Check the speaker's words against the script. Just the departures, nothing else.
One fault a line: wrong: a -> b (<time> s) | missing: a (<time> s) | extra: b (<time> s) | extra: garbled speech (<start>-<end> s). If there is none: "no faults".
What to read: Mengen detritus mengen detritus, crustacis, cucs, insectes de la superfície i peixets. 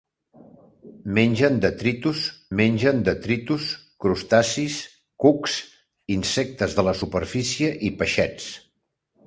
no faults